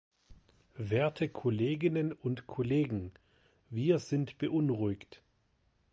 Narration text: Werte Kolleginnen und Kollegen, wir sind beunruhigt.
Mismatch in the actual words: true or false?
false